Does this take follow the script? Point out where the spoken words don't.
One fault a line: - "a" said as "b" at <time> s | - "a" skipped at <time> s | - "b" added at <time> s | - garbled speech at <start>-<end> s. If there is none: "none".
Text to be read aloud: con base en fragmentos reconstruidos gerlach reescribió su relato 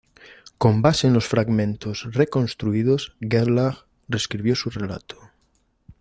- "los" added at 1.1 s